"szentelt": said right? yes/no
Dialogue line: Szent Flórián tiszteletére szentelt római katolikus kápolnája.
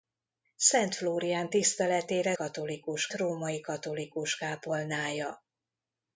no